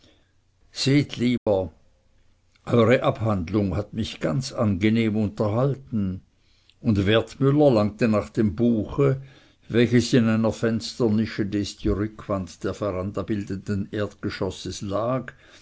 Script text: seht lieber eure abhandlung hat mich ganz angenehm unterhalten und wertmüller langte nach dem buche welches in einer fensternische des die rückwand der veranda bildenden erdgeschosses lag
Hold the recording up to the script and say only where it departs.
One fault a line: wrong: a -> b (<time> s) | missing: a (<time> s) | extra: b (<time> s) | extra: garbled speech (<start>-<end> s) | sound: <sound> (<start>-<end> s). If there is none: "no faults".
sound: dropout (1.4-1.5 s)